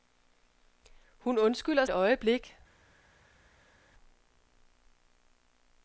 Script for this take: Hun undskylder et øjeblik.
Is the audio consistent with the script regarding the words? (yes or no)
yes